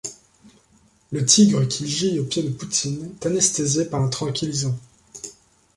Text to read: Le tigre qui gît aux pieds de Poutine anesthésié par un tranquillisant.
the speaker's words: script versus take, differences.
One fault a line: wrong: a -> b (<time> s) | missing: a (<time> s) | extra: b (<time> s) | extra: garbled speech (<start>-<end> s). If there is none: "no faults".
no faults